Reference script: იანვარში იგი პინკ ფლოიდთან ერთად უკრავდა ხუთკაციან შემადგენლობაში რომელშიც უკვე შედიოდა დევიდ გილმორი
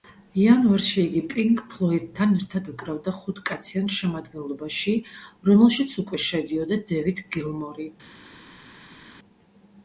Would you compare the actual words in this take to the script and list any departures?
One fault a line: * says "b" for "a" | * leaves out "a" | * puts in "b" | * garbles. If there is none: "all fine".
all fine